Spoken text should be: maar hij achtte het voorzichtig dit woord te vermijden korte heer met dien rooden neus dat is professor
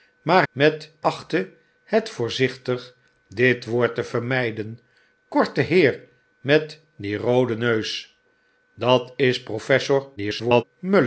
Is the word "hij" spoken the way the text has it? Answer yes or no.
no